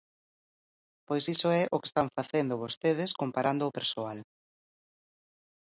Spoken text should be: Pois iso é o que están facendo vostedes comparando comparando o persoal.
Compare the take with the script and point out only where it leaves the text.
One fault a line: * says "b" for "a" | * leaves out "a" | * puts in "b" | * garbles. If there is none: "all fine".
* leaves out "comparando"